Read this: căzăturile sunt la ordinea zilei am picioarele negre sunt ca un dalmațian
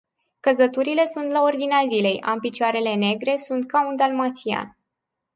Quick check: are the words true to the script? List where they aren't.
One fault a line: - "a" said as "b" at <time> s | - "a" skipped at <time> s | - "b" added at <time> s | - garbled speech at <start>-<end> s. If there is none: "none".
none